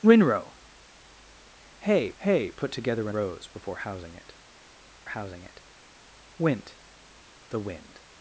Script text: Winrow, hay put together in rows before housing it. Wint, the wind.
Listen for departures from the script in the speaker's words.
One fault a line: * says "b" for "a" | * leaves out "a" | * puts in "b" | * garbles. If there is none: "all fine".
* puts in "hay"
* leaves out "in"
* puts in "housing it"